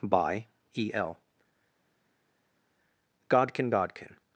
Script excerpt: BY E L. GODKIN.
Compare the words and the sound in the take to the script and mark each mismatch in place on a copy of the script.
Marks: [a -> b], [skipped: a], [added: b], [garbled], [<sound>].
BY E L. GODKIN. [added: GODKIN]